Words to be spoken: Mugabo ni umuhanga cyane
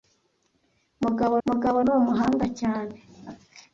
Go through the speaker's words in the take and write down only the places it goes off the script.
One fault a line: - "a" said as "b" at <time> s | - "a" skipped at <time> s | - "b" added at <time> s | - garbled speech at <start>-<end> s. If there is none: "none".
- "mugabo" added at 1.5 s